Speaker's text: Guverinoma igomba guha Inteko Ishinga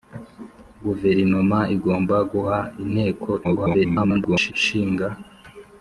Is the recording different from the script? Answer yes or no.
yes